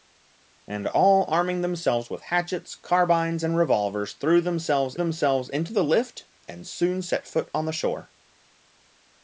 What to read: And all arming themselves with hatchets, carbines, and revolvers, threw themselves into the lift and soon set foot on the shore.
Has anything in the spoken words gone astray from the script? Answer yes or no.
yes